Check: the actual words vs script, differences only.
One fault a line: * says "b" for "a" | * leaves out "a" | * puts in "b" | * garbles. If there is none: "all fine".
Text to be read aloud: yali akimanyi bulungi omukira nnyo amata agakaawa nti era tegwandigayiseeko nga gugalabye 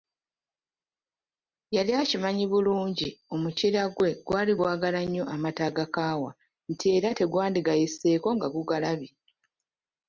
* puts in "gwe gwali gwagala"